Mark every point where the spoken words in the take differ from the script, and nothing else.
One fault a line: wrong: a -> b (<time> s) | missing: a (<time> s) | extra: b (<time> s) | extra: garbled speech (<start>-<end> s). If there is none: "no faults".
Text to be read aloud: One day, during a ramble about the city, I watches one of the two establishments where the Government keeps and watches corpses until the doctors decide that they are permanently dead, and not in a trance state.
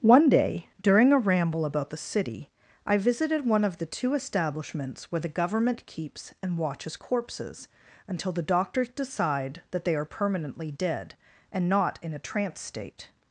wrong: watches -> visited (3.0 s)